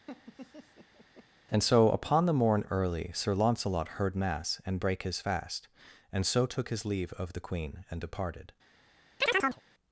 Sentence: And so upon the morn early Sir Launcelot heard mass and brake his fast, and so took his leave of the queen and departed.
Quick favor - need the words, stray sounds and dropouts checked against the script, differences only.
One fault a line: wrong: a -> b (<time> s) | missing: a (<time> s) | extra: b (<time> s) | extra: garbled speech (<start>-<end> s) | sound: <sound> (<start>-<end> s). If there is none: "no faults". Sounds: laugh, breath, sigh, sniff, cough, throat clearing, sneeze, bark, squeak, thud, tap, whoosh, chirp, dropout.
sound: laugh (0.1-1.3 s)
sound: chirp (9.2-9.6 s)